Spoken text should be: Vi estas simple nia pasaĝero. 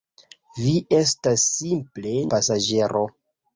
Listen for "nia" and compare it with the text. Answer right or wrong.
wrong